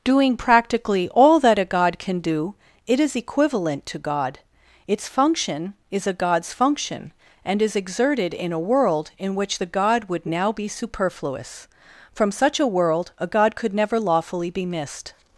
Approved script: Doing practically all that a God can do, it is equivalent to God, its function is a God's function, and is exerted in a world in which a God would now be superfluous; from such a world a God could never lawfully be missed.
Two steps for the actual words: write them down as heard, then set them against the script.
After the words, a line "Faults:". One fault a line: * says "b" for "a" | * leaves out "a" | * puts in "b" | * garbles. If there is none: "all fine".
Doing practically all that a God can do, it is equivalent to God, its function is a God's function, and is exerted in a world in which the God would now be superfluous; from such a world a God could never lawfully be missed.
Faults:
* says "the" for "a"